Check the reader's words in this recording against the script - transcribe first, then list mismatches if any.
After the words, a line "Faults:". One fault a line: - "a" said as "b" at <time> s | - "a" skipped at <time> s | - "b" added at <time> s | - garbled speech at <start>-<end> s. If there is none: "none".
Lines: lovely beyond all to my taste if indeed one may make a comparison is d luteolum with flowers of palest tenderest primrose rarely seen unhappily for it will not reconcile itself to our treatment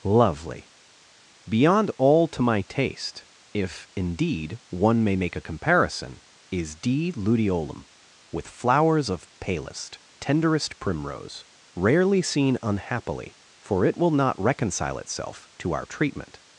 lovely beyond all to my taste if indeed one may make a comparison is d luteolum with flowers of palest tenderest primrose rarely seen unhappily for it will not reconcile itself to our treatment
Faults:
none